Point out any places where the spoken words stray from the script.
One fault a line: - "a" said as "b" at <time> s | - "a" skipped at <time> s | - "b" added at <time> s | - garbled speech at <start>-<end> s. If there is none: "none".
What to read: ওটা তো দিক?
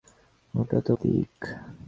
none